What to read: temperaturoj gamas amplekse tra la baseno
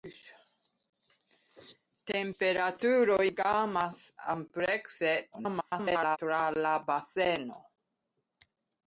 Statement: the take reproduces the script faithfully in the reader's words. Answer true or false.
false